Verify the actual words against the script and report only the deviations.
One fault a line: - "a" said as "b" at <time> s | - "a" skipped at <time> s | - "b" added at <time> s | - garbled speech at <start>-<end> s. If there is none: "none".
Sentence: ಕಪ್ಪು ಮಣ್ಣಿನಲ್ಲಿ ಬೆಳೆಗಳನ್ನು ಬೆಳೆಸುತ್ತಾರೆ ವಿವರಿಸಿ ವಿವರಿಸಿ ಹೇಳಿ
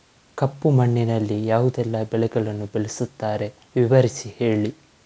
- "ಯಾವುದೆಲ್ಲ" added at 1.4 s
- "ವಿವರಿಸಿ" skipped at 4.3 s